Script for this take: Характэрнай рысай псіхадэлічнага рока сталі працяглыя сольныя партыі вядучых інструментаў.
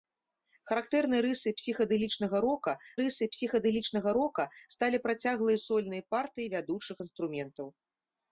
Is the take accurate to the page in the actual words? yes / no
no